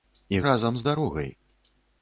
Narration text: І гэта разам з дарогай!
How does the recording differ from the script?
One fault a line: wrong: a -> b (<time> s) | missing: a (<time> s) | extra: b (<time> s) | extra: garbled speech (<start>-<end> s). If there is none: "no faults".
missing: гэта (0.4 s)